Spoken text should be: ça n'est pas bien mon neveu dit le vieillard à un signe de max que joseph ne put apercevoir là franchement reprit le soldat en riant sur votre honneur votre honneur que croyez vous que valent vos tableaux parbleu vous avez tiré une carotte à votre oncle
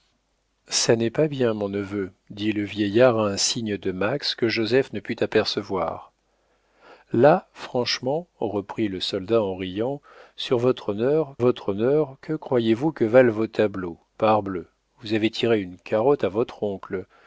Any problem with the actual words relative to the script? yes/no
no